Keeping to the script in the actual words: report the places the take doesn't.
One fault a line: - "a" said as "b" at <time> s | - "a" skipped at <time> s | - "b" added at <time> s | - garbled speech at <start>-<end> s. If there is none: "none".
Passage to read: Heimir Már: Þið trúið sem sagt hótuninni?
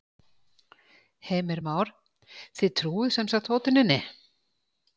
none